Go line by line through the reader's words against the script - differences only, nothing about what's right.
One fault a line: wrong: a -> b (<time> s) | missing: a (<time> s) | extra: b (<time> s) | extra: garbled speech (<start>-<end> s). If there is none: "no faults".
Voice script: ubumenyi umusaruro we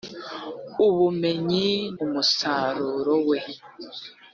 no faults